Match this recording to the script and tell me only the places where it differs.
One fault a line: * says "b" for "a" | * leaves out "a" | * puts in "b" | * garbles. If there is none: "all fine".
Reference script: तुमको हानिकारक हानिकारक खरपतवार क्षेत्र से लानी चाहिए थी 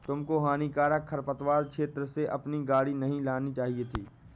* leaves out "हानिकारक"
* puts in "अपनी गाड़ी नहीं"